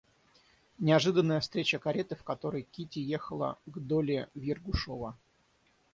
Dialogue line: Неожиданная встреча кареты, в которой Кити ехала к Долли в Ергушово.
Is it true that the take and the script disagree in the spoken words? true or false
false